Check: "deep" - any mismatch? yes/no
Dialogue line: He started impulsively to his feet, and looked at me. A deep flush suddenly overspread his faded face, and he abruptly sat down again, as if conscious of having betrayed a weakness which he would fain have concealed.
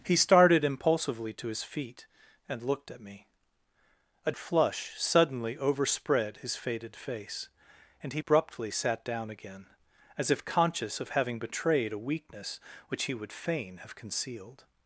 yes